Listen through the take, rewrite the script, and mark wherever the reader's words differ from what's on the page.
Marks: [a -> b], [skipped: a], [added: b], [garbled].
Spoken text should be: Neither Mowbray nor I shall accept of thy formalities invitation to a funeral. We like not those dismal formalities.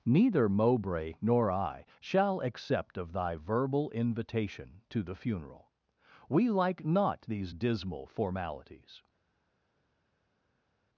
Neither Mowbray nor I shall accept of thy [formalities -> verbal] invitation to [a -> the] funeral. We like not [those -> these] dismal formalities.